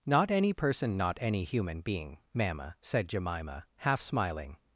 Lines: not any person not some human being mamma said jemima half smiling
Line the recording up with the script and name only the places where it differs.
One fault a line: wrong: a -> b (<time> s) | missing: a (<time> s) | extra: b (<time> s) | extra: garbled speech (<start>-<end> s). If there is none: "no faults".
wrong: some -> any (1.2 s)